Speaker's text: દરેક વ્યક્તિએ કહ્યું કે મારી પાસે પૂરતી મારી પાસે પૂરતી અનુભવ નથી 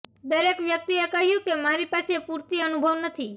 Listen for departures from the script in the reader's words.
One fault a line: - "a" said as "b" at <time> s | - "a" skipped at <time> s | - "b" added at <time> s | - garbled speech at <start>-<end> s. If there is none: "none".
- "મારી પાસે પૂરતી" skipped at 2.6 s